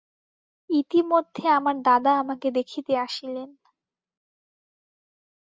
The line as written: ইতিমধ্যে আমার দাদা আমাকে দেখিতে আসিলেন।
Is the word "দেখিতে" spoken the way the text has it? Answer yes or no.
yes